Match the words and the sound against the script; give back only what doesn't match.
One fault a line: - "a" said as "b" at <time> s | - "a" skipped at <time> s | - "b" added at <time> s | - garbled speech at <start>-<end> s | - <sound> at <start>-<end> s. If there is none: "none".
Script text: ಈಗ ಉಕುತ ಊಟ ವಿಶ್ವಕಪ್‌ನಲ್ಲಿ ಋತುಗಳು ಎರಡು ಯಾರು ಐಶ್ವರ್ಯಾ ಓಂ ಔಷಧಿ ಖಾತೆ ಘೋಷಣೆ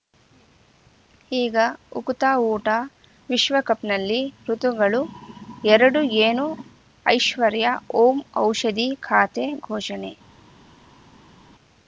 - "ಯಾರು" said as "ಏನು" at 6.2 s